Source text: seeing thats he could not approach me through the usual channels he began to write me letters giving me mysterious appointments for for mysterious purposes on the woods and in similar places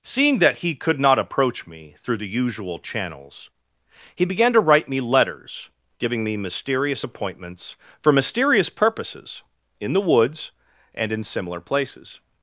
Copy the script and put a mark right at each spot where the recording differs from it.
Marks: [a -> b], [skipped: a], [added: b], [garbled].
seeing [thats -> that] he could not approach me through the usual channels he began to write me letters giving me mysterious appointments for [skipped: for] mysterious purposes [on -> in] the woods and in similar places